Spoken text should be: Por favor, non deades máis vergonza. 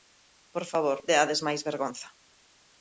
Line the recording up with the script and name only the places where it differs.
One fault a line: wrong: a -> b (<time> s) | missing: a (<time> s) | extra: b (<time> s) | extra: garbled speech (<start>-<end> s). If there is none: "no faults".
missing: non (1.0 s)